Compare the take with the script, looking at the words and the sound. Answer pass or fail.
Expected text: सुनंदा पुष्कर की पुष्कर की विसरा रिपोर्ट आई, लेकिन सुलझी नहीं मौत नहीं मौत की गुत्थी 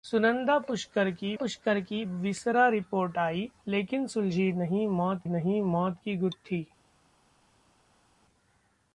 pass